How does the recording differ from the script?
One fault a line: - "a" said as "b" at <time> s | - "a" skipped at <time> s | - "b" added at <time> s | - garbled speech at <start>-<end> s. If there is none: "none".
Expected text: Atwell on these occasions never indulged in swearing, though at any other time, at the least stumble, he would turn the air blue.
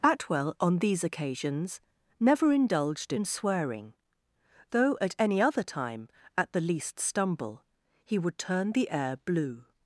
none